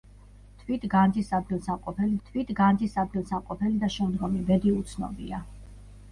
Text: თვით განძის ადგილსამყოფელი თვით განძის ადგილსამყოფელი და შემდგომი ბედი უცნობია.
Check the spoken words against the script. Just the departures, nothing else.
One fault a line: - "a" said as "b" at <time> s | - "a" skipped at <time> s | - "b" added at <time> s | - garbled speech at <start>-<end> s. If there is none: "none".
none